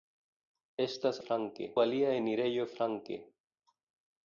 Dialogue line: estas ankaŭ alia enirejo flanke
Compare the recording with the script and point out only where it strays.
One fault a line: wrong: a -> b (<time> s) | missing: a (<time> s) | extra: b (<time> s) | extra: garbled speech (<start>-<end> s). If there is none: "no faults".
wrong: ankaŭ -> flanke (1.3 s)